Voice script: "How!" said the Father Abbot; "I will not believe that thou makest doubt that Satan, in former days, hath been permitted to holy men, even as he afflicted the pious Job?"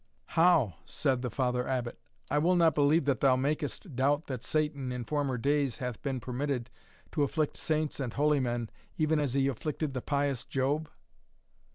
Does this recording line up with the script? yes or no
no